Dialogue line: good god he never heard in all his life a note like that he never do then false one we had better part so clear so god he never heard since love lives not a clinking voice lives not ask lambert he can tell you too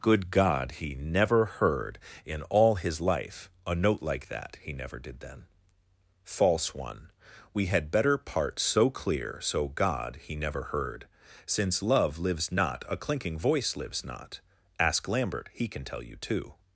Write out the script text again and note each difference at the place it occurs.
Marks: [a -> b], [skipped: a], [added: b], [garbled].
good god he never heard in all his life a note like that he never [do -> did] then false one we had better part so clear so god he never heard since love lives not a clinking voice lives not ask lambert he can tell you too